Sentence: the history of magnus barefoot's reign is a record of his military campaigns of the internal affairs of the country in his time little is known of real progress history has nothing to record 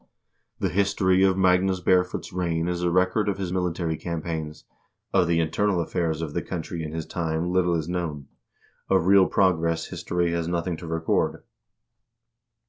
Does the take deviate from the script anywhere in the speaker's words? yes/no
no